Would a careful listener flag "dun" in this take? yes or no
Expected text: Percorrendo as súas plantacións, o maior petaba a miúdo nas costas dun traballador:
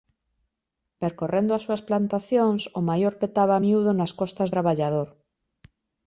yes